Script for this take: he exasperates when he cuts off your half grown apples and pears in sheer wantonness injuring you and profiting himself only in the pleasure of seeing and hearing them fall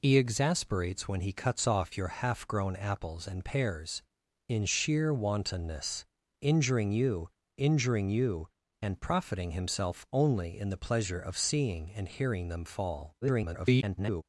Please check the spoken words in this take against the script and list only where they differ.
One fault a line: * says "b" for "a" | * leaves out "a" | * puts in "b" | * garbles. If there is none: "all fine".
* puts in "injuring you"
* garbles